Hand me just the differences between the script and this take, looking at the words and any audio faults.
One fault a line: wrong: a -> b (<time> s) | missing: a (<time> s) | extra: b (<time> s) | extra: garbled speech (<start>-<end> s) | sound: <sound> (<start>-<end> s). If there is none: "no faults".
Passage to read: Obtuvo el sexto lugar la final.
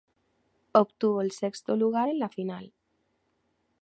extra: en (2.1 s)